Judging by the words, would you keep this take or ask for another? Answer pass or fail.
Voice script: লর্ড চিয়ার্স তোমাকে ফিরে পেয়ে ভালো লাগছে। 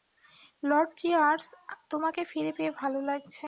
pass